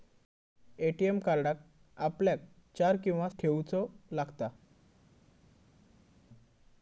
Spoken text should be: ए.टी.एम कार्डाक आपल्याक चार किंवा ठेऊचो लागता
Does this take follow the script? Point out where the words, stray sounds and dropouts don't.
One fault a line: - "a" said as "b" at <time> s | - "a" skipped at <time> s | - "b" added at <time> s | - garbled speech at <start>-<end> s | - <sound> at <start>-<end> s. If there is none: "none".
none